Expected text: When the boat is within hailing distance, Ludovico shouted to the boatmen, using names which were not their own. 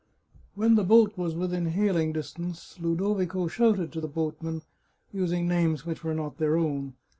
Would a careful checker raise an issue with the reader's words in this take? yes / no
yes